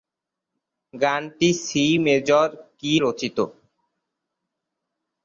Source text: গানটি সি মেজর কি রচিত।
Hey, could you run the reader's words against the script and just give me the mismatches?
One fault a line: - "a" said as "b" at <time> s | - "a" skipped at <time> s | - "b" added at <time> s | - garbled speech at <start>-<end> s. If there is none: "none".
none